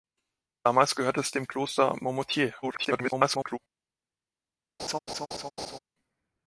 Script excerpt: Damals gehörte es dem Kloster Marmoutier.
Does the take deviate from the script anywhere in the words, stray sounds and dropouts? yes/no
yes